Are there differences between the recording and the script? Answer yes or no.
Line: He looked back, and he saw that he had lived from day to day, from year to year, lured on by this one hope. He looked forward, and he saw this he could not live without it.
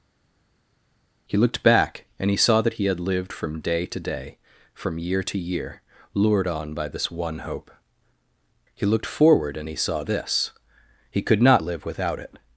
no